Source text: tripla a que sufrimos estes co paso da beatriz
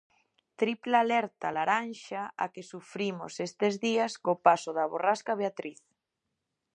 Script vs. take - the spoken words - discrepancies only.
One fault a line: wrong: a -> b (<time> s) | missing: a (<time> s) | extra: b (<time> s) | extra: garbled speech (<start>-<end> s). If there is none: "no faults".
extra: alerta laranxa (1.1 s)
extra: días (3.9 s)
extra: borrasca (4.9 s)